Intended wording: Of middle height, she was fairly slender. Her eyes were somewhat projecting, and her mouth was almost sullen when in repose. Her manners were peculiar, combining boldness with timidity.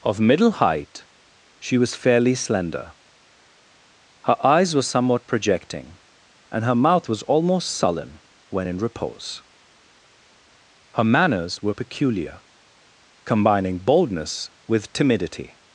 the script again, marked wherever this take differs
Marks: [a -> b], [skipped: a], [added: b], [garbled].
Of middle height, she was fairly slender. Her eyes were somewhat projecting, and her mouth was almost sullen when in repose. Her manners were peculiar, combining boldness with timidity.